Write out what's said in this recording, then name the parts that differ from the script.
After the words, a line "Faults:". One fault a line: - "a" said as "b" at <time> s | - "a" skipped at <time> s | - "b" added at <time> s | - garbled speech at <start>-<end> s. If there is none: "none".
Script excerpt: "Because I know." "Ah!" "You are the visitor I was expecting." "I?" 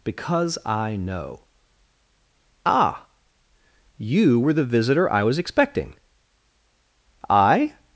"Because I know." "Ah!" "You were the visitor I was expecting." "I?"
Faults:
- "are" said as "were" at 4.4 s